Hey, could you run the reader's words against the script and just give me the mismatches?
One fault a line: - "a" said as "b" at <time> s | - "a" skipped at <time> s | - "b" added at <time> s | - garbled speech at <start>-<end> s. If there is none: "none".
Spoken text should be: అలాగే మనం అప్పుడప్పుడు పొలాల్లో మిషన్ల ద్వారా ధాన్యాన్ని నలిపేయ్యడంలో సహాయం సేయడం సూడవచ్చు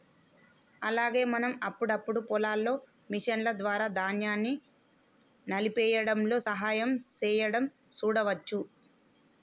none